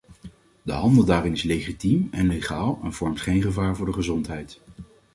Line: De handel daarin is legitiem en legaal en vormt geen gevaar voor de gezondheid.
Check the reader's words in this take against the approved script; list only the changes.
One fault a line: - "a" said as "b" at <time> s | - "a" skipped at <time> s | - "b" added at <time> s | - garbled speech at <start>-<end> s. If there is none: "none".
none